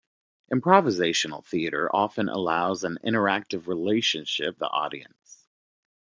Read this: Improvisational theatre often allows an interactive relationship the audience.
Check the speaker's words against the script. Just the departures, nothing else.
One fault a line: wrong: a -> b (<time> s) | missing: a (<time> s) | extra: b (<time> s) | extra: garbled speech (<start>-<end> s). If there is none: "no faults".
no faults